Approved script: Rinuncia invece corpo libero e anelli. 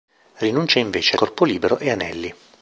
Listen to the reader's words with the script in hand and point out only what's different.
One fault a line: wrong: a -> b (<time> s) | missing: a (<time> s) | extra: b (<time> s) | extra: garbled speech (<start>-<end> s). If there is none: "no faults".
no faults